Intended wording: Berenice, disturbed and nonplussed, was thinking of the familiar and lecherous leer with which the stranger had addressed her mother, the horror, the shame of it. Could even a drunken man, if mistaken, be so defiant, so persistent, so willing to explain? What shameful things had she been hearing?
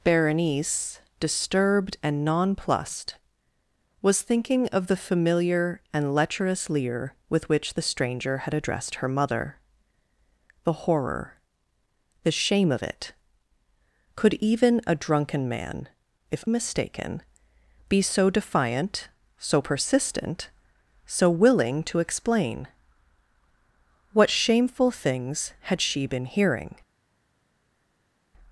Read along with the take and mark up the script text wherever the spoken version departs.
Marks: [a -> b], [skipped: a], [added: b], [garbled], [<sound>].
Berenice, disturbed and nonplussed, was thinking of the familiar and lecherous leer with which the stranger had addressed her mother, the horror, the shame of it. Could even a drunken man, if mistaken, be so defiant, so persistent, so willing to explain? What shameful things had she been hearing?